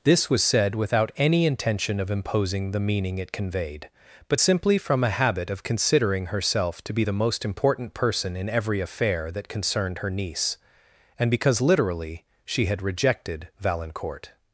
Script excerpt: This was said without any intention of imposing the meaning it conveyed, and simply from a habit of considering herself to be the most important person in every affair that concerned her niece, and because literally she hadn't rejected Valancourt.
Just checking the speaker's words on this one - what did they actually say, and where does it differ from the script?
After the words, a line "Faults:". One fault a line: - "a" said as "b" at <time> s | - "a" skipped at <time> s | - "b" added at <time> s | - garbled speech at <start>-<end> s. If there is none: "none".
This was said without any intention of imposing the meaning it conveyed, but simply from a habit of considering herself to be the most important person in every affair that concerned her niece, and because literally she had rejected Valancourt.
Faults:
- "and" said as "but" at 4.3 s
- "hadn't" said as "had" at 12.6 s